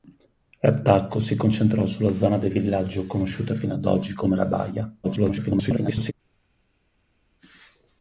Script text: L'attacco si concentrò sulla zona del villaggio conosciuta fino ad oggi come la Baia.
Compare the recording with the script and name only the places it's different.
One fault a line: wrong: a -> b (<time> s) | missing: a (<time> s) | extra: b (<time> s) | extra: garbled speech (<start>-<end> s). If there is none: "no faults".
extra: garbled speech (5.0-6.1 s)